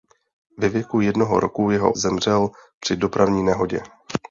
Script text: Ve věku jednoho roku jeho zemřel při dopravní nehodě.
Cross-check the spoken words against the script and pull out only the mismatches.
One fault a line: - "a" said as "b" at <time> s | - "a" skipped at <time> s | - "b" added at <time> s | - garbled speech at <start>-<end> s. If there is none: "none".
none